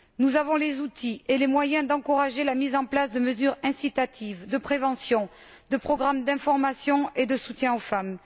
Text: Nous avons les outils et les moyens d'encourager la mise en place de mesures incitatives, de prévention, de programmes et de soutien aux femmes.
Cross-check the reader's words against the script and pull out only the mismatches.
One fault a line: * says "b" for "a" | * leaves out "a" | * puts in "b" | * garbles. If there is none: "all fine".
* puts in "d'information"